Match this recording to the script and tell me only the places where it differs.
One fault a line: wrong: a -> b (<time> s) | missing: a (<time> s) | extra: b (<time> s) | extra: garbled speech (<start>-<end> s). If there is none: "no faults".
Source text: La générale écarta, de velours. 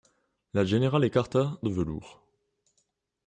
no faults